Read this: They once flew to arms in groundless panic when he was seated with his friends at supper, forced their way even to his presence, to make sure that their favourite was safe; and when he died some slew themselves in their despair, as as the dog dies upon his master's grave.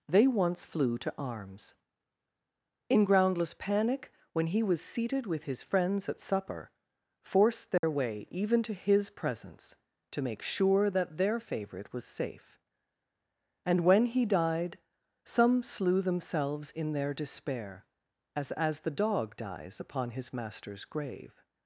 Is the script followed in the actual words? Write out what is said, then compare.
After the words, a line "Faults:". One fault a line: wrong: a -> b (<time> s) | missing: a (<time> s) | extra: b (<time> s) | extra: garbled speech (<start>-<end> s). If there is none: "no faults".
They once flew to arms in groundless panic when he was seated with his friends at supper, forced their way even to his presence, to make sure that their favourite was safe; and when he died some slew themselves in their despair, as as the dog dies upon his master's grave.
Faults:
no faults